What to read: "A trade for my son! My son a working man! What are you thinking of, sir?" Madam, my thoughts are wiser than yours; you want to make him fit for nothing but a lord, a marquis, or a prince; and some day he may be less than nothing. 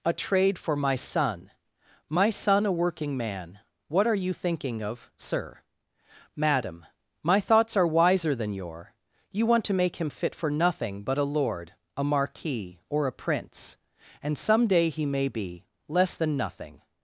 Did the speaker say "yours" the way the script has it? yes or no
no